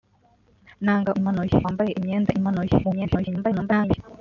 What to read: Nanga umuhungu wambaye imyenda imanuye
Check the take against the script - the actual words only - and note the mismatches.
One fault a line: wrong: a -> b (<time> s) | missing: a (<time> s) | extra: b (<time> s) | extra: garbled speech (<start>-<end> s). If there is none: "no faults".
wrong: umuhungu -> imanuye (1.2 s)
extra: garbled speech (2.8-4.0 s)